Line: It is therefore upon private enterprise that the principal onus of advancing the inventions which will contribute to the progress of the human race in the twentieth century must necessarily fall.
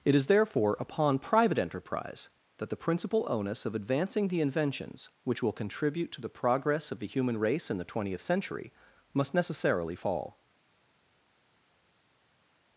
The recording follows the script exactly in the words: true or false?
true